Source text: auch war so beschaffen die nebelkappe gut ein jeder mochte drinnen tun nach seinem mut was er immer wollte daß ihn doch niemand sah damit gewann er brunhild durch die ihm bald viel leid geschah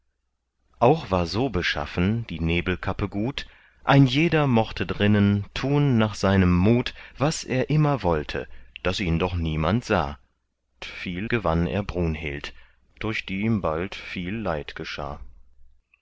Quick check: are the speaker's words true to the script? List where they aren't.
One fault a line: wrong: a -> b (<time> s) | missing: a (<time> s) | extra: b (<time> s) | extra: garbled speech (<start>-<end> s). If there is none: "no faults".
wrong: damit -> viel (10.8 s)